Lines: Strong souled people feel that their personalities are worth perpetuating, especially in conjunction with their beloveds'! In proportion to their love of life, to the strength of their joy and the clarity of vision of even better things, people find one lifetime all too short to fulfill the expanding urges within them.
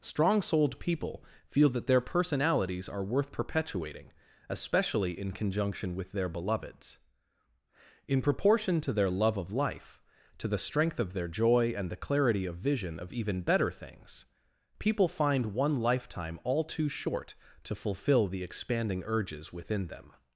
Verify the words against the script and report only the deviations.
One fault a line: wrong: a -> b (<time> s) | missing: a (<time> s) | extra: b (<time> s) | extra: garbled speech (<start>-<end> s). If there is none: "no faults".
no faults